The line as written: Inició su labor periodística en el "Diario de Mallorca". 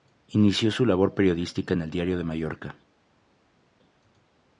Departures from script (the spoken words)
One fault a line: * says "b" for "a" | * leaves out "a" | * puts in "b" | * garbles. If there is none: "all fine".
all fine